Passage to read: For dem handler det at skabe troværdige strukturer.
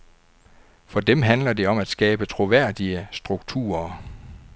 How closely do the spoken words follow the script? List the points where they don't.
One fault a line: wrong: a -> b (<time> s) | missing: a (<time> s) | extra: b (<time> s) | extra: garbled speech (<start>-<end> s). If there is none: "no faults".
extra: om (1.7 s)